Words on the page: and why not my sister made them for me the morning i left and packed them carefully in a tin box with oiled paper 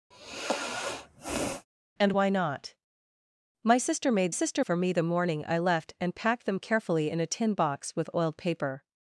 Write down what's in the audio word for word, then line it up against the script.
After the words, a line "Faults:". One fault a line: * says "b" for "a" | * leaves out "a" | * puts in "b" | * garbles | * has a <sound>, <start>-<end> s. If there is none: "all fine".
and why not my sister made sister for me the morning i left and packed them carefully in a tin box with oiled paper
Faults:
* has a sigh, 0.1-1.7 s
* says "sister" for "them"